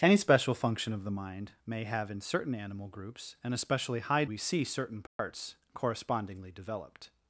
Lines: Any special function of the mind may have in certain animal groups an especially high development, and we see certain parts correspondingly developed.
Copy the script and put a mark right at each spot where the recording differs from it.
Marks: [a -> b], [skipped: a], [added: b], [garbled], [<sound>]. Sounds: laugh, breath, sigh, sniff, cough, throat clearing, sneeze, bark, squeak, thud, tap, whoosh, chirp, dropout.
Any special function of the mind may have in certain animal groups an especially high [skipped: development, and] we see certain parts [dropout] correspondingly developed.